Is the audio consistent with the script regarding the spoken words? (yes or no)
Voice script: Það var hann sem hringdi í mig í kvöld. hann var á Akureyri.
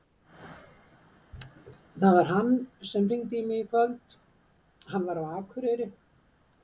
yes